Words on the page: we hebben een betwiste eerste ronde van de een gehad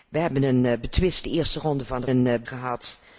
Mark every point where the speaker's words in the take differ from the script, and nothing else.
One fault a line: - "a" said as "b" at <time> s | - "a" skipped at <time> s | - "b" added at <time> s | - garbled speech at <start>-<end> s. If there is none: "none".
none